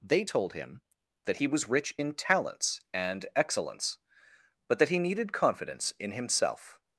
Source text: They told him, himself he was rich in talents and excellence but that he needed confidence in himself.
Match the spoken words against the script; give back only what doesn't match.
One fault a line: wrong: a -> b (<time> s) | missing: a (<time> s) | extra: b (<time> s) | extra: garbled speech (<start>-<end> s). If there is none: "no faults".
wrong: himself -> that (1.3 s)